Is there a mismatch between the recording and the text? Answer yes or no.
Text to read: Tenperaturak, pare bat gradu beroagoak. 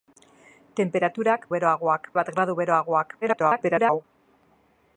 yes